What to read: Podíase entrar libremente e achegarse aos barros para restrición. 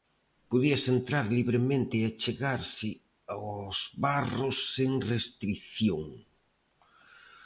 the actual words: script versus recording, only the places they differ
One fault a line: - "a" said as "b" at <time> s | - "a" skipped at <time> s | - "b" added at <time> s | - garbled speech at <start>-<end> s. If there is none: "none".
- "para" said as "sen" at 4.8 s